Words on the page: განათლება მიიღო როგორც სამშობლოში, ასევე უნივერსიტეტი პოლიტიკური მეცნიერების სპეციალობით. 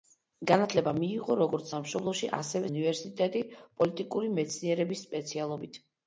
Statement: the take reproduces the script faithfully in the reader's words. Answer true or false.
true